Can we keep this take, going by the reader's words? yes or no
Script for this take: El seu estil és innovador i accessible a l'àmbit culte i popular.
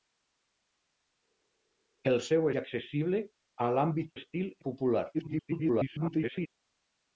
no